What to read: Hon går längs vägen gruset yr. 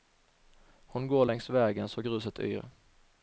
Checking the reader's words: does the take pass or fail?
fail